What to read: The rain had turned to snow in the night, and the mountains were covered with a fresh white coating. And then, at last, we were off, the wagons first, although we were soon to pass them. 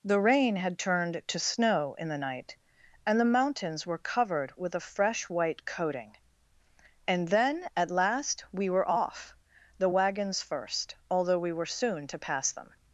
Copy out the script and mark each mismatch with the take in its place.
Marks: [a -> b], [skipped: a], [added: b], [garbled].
The rain had turned to snow in the night, and the mountains were covered with a fresh white coating. And then, at last, we were off, the wagons first, although we were soon to pass them.